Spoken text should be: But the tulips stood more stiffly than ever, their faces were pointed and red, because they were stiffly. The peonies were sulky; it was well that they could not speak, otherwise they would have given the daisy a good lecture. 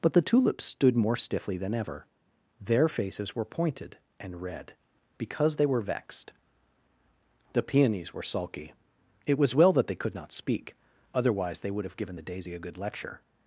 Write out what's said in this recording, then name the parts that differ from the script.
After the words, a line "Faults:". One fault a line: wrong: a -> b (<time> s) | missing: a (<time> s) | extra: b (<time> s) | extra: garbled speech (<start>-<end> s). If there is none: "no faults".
But the tulips stood more stiffly than ever, their faces were pointed and red, because they were vexed. The peonies were sulky; it was well that they could not speak, otherwise they would have given the daisy a good lecture.
Faults:
wrong: stiffly -> vexed (5.8 s)